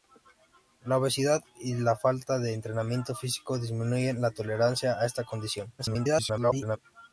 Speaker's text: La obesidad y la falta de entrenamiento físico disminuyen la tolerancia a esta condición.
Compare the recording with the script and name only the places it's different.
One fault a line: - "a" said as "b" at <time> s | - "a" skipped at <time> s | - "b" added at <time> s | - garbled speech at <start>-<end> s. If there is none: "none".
- garbled speech at 5.8-6.8 s